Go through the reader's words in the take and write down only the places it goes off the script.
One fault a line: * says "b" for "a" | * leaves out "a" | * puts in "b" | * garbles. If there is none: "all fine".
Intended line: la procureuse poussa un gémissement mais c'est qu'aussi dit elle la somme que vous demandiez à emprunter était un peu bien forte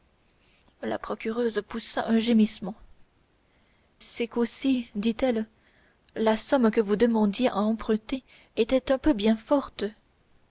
* leaves out "mais"